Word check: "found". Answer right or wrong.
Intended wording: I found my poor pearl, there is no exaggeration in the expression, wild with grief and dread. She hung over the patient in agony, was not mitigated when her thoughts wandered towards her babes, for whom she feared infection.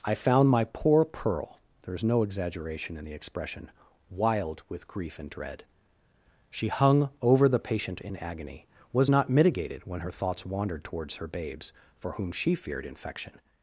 right